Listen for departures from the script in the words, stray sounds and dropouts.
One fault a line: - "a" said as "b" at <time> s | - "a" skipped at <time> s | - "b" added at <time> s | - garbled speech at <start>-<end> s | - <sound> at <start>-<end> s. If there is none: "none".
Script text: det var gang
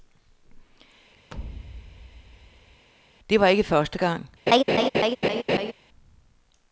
- thud at 1.3-2.9 s
- "ikke første" added at 3.5 s
- laugh at 4.5-5.7 s